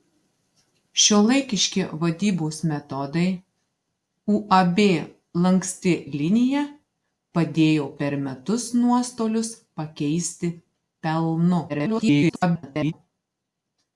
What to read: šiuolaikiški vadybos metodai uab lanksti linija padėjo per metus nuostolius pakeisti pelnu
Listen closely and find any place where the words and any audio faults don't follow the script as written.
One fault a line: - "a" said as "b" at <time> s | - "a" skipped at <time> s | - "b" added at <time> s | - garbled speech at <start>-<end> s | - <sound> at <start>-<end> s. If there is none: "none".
- garbled speech at 11.7-12.9 s